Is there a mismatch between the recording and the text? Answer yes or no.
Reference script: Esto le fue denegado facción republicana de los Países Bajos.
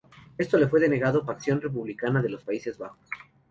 no